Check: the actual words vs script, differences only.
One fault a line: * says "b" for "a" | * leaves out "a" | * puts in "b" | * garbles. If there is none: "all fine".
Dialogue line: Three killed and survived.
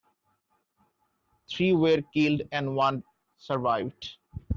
* puts in "were"
* puts in "one"